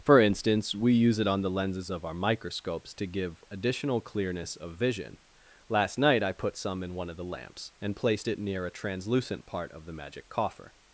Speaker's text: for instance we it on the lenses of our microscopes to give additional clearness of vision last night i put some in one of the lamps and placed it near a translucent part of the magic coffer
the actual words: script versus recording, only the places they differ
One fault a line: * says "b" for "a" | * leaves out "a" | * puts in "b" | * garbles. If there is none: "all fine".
* puts in "use"